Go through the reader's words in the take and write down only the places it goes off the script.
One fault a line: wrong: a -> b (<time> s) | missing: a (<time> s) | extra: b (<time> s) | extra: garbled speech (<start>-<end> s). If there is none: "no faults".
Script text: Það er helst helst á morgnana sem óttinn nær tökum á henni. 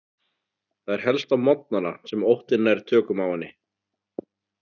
missing: helst (1.4 s)